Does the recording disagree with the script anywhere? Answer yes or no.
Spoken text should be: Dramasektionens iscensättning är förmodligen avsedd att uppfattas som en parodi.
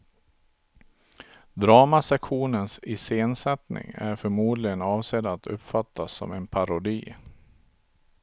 no